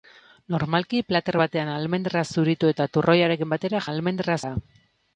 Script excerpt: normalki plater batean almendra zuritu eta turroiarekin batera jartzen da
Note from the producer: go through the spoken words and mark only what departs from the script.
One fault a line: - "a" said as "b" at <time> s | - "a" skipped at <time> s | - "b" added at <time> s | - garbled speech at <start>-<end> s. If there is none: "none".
- "jartzen" said as "almendra" at 3.9 s